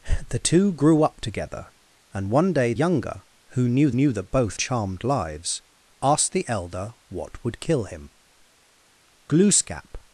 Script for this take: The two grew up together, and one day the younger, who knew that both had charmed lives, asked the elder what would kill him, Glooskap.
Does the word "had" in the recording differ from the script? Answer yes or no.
yes